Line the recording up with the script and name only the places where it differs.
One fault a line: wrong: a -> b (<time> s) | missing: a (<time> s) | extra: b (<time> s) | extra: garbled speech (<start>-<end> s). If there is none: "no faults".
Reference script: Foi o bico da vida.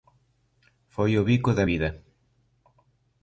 no faults